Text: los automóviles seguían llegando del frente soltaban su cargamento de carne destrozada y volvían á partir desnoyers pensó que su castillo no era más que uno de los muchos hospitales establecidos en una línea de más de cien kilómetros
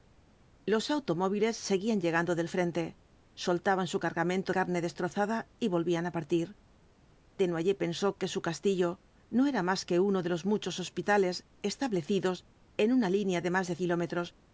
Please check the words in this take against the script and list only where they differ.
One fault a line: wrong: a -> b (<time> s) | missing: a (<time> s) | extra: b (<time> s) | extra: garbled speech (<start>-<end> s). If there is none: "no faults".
missing: de (4.5 s)
missing: cien (13.8 s)